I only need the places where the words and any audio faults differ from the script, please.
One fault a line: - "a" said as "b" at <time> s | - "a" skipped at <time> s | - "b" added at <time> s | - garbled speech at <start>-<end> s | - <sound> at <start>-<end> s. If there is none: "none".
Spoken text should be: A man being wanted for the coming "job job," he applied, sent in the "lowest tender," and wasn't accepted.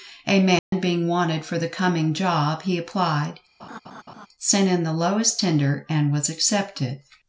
- dropout at 0.6-0.7 s
- "job" skipped at 2.6 s
- laugh at 3.6-4.3 s
- "wasn't" said as "was" at 6.1 s